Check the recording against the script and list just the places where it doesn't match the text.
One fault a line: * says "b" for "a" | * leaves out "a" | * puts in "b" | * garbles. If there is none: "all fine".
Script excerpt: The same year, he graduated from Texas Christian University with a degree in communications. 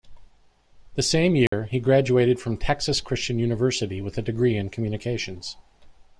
all fine